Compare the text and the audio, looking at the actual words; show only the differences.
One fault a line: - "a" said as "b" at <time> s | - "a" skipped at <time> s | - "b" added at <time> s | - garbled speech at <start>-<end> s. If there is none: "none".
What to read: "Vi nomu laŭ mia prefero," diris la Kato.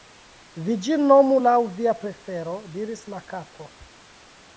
- "ĝin" added at 0.8 s
- "mia" said as "via" at 1.8 s